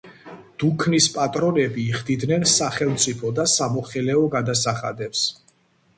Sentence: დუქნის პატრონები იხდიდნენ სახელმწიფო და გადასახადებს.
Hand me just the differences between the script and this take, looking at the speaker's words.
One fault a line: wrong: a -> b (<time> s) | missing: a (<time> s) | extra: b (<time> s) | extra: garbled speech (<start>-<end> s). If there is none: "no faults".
extra: სამოხელეო (3.5 s)